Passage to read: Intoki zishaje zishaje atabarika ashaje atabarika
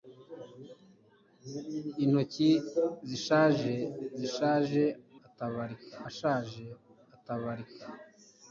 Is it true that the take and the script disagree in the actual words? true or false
false